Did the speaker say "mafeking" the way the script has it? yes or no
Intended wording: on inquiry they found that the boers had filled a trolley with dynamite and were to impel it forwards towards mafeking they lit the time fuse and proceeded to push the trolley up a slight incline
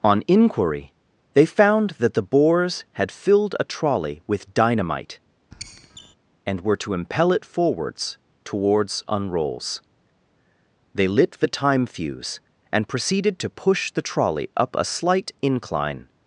no